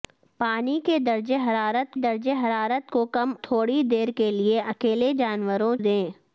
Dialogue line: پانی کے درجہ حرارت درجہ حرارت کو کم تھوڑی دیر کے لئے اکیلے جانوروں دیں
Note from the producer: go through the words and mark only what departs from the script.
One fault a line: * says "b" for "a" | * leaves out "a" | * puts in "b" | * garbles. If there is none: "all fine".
all fine